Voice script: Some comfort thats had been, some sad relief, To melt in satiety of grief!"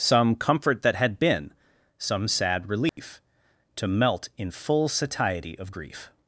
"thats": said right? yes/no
no